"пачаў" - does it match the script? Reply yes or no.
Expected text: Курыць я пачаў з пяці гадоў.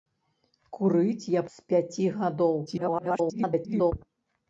no